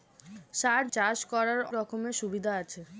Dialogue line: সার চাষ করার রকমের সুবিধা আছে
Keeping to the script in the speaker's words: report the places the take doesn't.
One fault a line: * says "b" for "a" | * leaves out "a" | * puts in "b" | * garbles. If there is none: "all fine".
all fine